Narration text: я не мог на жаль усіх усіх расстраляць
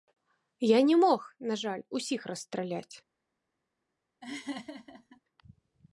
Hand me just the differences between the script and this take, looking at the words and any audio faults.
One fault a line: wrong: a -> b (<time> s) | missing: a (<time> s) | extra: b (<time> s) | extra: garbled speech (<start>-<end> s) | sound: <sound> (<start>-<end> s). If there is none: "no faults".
missing: усіх (2.3 s)
sound: laugh (4.2-5.2 s)